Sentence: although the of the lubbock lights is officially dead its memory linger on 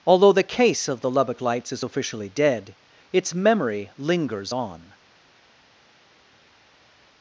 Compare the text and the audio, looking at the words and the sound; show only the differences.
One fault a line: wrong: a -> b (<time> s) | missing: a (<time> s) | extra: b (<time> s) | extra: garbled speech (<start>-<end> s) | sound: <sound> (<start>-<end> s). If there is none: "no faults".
extra: case (0.4 s)
wrong: linger -> lingers (4.0 s)